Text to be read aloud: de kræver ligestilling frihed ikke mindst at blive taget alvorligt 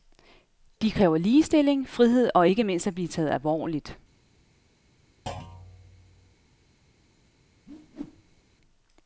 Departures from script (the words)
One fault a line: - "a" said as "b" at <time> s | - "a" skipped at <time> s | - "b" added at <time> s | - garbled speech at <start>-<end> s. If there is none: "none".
- "og" added at 2.4 s